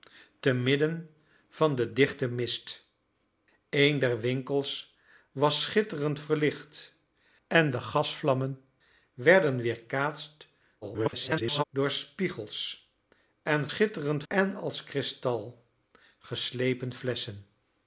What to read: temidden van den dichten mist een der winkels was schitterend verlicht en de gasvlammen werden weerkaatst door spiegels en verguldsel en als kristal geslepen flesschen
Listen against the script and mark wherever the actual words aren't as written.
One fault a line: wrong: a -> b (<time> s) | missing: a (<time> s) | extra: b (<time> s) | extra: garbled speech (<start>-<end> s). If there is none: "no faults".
extra: garbled speech (10.8-11.6 s)
wrong: verguldsel -> schitterend (13.7 s)